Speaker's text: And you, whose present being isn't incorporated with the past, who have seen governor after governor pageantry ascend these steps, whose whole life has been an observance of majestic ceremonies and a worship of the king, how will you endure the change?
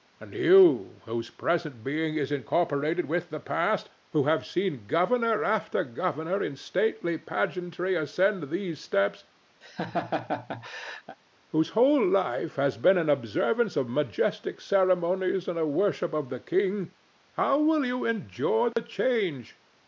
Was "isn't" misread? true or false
true